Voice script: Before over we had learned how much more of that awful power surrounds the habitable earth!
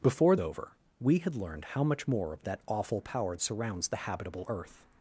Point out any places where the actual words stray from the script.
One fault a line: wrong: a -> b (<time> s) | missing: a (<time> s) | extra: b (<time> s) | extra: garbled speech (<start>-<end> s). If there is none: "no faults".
no faults